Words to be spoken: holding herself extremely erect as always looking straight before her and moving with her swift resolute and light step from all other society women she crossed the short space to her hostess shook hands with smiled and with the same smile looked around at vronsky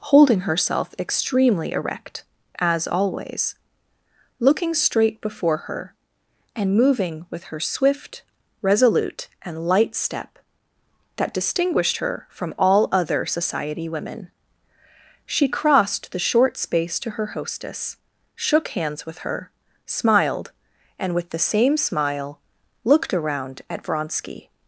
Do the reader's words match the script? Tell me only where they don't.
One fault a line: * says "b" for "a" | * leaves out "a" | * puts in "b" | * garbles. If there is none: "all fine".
* puts in "that distinguished her"
* puts in "her"